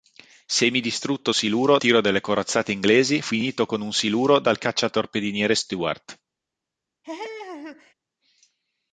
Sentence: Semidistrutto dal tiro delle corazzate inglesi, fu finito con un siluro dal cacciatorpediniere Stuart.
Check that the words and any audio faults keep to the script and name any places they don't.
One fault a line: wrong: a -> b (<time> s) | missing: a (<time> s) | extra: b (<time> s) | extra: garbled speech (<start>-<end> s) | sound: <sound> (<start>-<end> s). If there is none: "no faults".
wrong: dal -> siluro (1.3 s)
missing: fu (3.2 s)
sound: laugh (7.0-7.9 s)